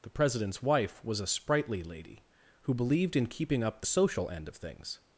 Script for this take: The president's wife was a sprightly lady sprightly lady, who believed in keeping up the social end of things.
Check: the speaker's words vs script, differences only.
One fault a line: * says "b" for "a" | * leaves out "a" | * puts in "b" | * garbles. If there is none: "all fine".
* leaves out "sprightly lady"